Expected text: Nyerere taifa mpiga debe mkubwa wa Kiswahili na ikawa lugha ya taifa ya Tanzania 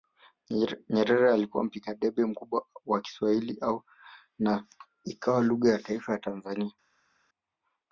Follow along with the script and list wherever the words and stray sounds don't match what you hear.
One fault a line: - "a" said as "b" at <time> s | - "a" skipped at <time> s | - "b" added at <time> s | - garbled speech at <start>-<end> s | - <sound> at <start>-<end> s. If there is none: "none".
- "taifa" said as "alikuwa" at 1.3 s